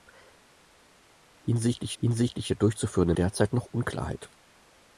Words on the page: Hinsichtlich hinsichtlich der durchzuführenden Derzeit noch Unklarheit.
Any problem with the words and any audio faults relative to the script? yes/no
no